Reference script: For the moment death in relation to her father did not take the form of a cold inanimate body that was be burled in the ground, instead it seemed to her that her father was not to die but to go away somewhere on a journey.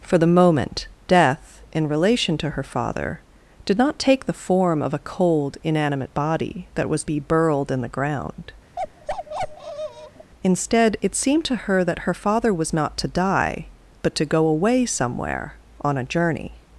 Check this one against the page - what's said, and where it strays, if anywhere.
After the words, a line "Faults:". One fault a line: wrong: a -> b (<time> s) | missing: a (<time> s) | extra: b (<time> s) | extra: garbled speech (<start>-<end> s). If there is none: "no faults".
For the moment death in relation to her father did not take the form of a cold inanimate body that was be burled in the ground, instead it seemed to her that her father was not to die but to go away somewhere on a journey.
Faults:
no faults